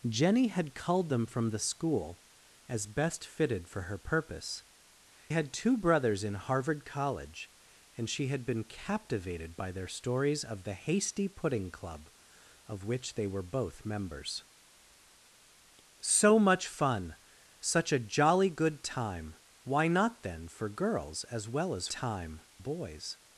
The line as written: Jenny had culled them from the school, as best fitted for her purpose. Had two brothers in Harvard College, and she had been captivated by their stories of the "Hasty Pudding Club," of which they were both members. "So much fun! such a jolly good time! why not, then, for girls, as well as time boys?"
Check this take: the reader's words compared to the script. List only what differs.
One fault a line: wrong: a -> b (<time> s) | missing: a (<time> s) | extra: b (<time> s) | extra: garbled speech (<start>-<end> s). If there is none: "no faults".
no faults